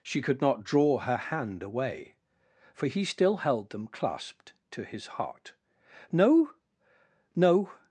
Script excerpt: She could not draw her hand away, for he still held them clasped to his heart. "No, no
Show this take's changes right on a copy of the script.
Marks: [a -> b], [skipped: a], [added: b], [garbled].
She could not draw her hand away, for he still held them clasped to his heart. "No, no